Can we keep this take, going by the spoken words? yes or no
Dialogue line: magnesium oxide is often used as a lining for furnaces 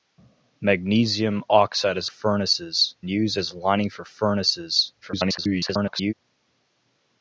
no